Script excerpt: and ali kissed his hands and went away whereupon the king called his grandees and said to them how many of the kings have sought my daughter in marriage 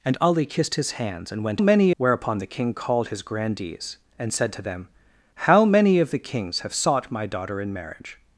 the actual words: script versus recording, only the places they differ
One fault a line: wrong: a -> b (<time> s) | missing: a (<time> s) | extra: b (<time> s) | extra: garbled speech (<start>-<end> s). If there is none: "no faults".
wrong: away -> many (1.6 s)